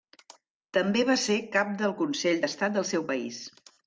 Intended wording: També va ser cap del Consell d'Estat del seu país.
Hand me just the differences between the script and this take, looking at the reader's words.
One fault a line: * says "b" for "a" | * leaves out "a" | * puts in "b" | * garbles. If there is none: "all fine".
all fine